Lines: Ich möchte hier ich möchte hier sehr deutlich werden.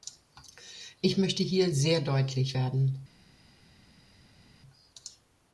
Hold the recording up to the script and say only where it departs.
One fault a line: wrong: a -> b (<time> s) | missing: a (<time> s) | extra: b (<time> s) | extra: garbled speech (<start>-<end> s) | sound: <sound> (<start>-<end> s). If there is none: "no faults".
missing: ich möchte hier (1.8 s)